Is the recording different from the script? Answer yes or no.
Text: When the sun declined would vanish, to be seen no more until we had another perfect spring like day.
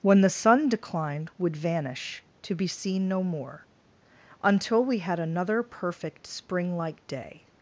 no